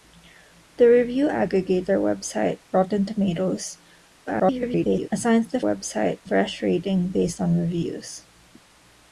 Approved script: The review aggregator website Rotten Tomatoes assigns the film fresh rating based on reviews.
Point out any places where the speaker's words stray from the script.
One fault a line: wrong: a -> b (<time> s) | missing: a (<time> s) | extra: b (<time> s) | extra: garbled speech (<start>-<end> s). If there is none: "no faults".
extra: garbled speech (4.3-5.1 s)
wrong: film -> website (5.6 s)